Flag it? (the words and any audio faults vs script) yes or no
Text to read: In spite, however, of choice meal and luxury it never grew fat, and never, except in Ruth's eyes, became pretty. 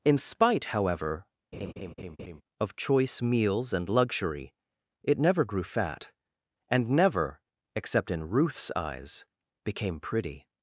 yes